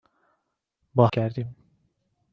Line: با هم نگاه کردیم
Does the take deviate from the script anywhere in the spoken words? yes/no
yes